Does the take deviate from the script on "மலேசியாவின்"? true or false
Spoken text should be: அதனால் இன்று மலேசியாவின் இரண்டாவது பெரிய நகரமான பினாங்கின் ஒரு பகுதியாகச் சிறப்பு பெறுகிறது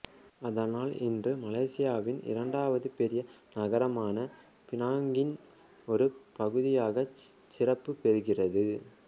false